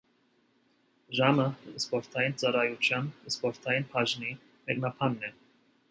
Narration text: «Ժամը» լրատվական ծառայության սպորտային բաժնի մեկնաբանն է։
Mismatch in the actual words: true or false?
true